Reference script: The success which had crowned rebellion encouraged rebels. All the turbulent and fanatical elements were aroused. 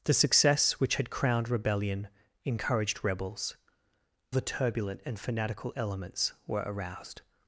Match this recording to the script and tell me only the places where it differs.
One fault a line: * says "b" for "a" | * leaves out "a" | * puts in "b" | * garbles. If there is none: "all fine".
* leaves out "All"